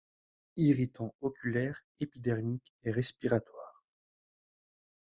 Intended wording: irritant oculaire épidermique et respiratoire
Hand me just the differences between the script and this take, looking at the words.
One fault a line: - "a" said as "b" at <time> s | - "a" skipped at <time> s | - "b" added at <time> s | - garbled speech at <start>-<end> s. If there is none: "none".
none